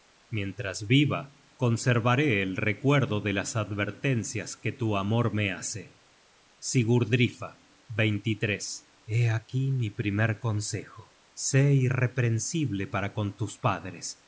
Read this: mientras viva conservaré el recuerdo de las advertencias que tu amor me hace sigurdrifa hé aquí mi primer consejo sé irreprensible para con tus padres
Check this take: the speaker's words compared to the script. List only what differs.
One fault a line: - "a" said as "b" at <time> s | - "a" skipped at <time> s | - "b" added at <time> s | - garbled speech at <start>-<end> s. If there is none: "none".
none